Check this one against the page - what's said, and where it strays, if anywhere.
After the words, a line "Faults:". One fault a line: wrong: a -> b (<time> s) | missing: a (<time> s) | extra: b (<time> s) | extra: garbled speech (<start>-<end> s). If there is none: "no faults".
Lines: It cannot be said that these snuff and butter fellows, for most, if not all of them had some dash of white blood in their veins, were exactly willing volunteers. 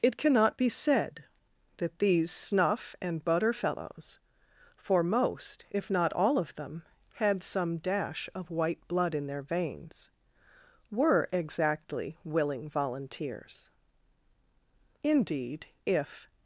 It cannot be said that these snuff and butter fellows, for most, if not all of them had some dash of white blood in their veins, were exactly willing volunteers. Indeed, if
Faults:
extra: Indeed if (15.0 s)